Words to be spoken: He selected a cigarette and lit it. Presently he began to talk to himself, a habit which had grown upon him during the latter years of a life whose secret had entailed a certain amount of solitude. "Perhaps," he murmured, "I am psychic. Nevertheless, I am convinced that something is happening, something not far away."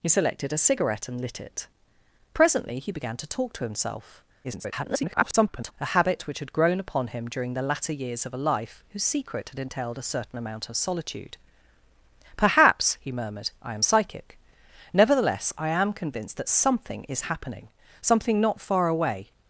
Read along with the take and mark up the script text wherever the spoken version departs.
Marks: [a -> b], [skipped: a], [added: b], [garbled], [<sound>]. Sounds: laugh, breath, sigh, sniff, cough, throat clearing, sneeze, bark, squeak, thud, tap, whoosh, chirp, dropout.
He selected a cigarette and lit it. Presently he began to talk to himself, [garbled] a habit which had grown upon him during the latter years of a life whose secret had entailed a certain amount of solitude. "Perhaps," he murmured, "I am psychic. Nevertheless, I am convinced that something is happening, something not far away."